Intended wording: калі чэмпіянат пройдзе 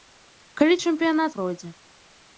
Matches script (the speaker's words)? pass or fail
pass